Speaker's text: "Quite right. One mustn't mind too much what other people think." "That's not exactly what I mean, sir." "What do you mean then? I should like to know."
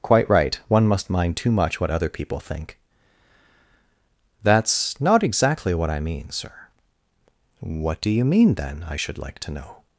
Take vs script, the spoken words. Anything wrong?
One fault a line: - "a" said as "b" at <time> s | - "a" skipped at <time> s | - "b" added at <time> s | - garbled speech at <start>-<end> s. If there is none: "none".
- "mustn't" said as "must" at 0.9 s